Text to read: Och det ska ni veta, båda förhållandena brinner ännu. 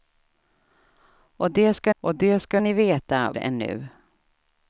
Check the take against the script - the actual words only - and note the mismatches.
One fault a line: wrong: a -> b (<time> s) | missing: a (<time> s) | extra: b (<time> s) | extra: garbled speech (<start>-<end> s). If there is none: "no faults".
wrong: ni veta båda förhållandena brinner -> och det ska ni veta (2.0 s)